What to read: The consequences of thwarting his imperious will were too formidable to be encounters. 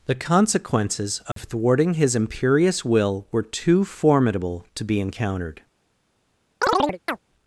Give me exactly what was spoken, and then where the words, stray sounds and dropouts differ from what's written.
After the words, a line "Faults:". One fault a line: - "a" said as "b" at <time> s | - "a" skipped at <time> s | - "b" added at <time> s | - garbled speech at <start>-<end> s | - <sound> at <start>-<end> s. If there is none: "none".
The consequences of thwarting his imperious will were too formidable to be encountered.
Faults:
- dropout at 1.3-1.4 s
- "encounters" said as "encountered" at 5.0 s
- chirp at 6.6-7.2 s